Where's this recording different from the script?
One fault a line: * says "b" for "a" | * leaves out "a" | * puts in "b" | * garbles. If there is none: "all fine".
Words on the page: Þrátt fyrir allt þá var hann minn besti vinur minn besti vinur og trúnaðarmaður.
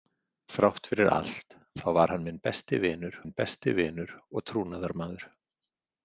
all fine